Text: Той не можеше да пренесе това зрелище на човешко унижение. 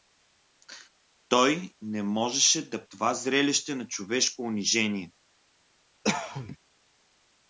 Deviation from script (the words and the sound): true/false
true